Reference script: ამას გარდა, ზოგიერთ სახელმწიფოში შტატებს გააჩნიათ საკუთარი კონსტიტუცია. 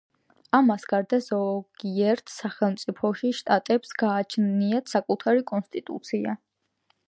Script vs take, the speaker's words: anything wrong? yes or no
no